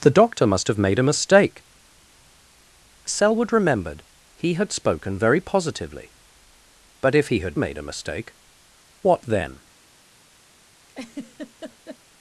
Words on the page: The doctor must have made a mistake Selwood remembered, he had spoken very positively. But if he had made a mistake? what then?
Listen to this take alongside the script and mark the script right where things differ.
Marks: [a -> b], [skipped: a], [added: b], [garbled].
The doctor must have made a mistake Selwood remembered, he had spoken very positively. But if he had made a mistake? what then?